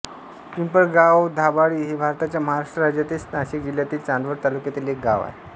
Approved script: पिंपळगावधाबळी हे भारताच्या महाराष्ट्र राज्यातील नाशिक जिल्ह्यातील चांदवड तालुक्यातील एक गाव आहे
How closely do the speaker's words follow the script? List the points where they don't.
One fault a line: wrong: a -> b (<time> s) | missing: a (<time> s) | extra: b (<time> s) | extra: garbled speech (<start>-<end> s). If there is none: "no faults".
no faults